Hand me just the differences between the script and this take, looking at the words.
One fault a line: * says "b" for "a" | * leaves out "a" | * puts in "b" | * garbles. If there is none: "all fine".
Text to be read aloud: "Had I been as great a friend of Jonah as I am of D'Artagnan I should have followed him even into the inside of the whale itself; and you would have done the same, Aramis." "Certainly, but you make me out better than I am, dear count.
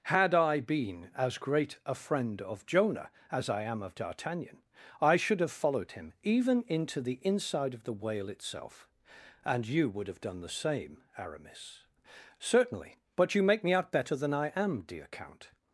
all fine